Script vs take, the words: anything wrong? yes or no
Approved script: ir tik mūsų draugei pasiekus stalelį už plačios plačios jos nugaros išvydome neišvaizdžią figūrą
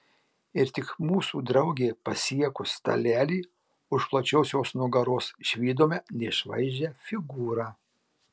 yes